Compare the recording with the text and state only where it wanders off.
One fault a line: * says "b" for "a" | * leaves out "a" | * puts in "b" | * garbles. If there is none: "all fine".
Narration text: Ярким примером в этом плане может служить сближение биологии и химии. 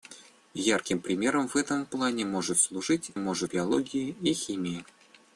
* says "может" for "сближение"